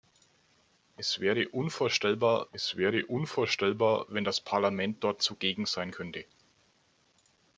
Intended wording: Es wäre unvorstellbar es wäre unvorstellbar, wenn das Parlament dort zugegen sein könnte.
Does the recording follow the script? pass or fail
pass